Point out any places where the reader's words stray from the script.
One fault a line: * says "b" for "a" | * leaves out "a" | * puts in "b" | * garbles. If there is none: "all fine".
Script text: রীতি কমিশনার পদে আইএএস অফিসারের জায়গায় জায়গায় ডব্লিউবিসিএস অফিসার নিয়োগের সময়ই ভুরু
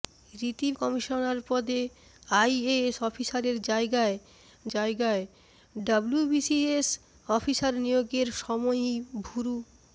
all fine